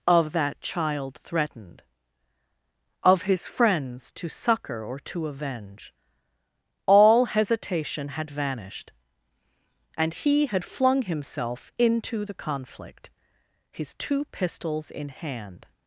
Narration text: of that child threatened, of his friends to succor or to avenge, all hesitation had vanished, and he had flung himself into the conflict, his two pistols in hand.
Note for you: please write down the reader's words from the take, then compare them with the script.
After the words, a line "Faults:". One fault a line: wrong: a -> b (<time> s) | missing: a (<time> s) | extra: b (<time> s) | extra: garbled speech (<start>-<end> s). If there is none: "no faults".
of that child threatened, of his friends to succor or to avenge, all hesitation had vanished, and he had flung himself into the conflict, his two pistols in hand.
Faults:
no faults